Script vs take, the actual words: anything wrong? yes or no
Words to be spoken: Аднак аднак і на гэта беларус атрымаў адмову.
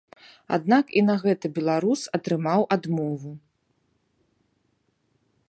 yes